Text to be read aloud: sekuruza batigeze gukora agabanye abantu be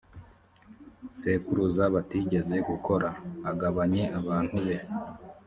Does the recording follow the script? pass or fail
pass